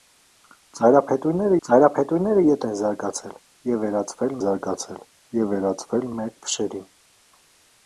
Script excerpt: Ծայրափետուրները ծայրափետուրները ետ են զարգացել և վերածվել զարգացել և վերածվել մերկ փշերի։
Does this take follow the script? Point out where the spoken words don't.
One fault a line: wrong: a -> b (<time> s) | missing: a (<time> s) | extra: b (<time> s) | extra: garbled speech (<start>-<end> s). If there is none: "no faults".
no faults